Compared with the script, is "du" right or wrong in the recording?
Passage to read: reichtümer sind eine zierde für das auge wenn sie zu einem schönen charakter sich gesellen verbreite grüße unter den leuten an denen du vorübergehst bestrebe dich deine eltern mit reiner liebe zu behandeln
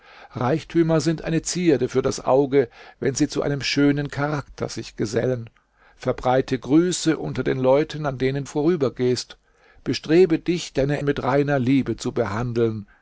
wrong